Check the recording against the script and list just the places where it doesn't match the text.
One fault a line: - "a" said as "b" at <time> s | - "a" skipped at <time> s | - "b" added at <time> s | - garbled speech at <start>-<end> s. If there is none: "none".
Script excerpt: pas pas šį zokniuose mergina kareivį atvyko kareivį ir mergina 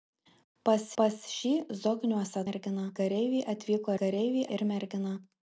none